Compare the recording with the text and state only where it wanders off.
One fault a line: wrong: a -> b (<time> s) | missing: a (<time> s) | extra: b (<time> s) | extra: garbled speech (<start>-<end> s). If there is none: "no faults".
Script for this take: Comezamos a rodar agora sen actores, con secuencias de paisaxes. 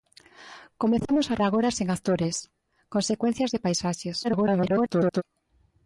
missing: rodar (1.4 s)
extra: garbled speech (4.2-5.2 s)